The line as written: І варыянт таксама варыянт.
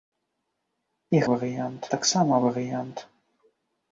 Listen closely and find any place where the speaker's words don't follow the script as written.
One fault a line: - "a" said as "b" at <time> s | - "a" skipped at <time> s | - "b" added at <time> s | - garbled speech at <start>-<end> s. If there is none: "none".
none